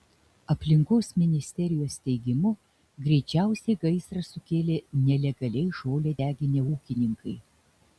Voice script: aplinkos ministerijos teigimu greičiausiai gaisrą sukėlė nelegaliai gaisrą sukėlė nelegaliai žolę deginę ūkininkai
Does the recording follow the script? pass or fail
fail